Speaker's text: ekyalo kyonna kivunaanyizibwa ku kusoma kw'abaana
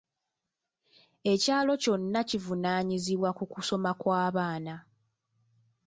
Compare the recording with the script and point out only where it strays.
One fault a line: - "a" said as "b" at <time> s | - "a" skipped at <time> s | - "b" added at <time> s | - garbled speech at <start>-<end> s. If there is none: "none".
none